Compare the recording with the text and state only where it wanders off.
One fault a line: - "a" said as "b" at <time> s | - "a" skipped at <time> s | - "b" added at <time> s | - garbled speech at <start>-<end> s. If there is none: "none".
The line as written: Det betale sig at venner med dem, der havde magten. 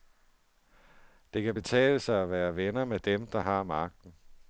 - "kan" added at 1.4 s
- "være" added at 2.3 s
- "havde" said as "har" at 3.4 s